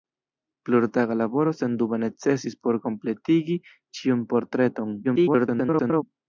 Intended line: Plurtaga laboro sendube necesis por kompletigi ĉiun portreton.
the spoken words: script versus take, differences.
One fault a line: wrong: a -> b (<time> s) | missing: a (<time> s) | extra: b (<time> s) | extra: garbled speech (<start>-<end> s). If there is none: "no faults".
extra: garbled speech (5.0-6.0 s)